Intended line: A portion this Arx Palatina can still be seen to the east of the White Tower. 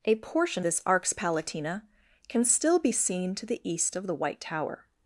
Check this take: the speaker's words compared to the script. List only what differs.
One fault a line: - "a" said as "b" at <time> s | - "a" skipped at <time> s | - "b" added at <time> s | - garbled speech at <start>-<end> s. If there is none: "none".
none